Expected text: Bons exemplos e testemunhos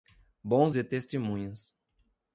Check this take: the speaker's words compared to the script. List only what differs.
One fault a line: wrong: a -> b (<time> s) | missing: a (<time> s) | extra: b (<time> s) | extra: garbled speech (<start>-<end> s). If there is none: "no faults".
missing: exemplos (0.7 s)